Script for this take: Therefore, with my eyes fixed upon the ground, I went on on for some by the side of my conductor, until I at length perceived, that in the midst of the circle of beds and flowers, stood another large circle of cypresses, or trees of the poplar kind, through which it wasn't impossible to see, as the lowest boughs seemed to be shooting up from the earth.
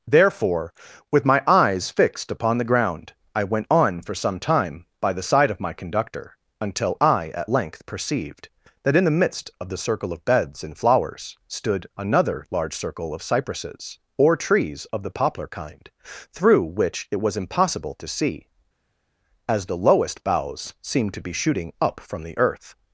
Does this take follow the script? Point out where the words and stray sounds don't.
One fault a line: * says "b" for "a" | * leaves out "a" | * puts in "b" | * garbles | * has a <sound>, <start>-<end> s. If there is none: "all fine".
* leaves out "on"
* puts in "time"
* says "was" for "wasn't"